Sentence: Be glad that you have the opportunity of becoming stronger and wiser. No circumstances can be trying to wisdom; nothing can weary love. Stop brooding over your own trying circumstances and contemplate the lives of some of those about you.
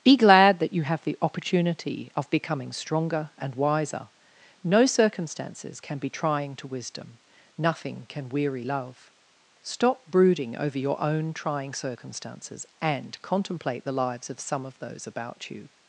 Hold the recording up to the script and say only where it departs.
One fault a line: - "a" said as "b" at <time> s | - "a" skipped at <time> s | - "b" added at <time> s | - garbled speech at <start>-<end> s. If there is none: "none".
none